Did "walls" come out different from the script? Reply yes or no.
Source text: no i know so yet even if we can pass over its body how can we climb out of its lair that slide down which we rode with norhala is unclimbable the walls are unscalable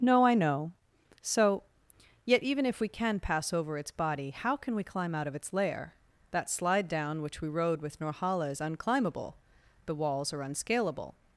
no